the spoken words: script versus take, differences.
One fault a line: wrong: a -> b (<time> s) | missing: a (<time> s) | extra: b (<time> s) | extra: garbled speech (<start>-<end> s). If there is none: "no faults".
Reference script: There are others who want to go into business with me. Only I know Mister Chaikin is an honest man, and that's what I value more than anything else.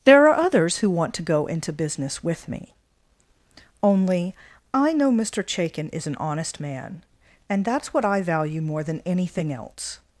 no faults